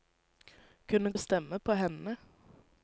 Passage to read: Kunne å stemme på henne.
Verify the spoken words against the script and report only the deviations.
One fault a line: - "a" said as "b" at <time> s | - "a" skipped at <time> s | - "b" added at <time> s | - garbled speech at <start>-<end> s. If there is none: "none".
none